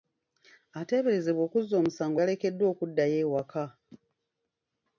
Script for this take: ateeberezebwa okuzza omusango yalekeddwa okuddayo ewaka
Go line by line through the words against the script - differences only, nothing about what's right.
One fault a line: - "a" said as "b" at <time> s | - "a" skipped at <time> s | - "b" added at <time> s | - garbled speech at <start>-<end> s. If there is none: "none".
none